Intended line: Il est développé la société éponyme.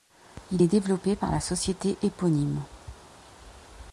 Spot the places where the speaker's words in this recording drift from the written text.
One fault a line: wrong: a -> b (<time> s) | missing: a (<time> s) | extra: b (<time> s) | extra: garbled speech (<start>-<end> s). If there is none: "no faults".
extra: par (1.1 s)